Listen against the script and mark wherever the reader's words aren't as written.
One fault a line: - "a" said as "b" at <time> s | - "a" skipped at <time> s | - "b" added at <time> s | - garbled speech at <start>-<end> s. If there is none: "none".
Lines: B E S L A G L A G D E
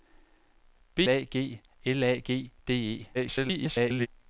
- "E S L" skipped at 1.0 s
- garbled speech at 3.1-4.1 s